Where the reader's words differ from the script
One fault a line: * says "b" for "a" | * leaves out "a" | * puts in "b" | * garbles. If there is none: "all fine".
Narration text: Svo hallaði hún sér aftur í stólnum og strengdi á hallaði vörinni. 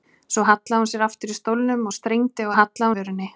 all fine